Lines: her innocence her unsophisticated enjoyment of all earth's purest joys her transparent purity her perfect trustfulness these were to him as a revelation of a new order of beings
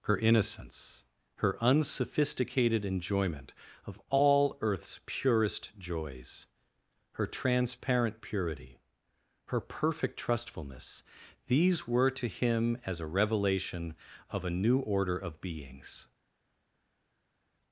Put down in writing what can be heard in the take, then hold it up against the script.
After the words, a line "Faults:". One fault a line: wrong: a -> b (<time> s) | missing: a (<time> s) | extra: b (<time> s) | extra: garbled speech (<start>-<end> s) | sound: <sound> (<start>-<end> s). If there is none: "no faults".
her innocence her unsophisticated enjoyment of all earth's purest joys her transparent purity her perfect trustfulness these were to him as a revelation of a new order of beings
Faults:
no faults